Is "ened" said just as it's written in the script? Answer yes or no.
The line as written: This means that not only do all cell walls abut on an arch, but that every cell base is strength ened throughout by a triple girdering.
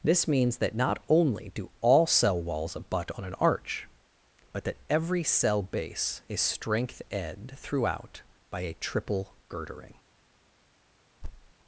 no